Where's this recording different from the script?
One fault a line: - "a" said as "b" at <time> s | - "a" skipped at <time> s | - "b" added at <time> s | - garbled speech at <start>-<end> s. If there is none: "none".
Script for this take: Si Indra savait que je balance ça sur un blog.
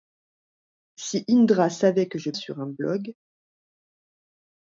- "balance ça" skipped at 2.3 s